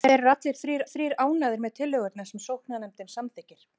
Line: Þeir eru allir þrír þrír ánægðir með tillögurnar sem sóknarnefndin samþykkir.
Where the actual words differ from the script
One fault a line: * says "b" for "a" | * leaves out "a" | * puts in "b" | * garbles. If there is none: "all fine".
all fine